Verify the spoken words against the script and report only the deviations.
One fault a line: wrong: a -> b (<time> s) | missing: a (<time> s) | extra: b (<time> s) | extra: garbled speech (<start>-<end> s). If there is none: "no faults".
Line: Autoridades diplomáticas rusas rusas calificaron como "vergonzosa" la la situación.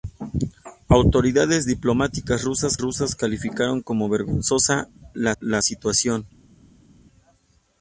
no faults